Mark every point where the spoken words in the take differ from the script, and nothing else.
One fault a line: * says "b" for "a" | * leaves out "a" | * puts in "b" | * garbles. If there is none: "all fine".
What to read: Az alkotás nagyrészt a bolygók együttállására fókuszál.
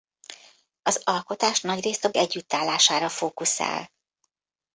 * leaves out "bolygók"